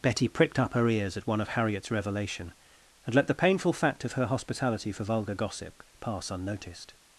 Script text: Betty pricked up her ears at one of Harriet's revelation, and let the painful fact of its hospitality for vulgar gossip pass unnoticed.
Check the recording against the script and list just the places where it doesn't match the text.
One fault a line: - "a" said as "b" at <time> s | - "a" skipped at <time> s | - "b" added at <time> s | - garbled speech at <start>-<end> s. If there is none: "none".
- "its" said as "her" at 4.1 s